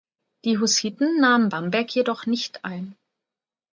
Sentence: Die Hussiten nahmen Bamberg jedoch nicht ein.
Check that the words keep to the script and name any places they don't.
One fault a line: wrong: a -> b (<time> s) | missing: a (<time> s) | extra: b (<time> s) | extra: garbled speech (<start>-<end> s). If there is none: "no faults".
no faults